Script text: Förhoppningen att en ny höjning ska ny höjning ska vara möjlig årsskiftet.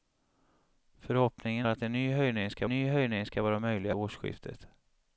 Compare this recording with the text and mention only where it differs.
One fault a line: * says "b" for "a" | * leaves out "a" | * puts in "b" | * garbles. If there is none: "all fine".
all fine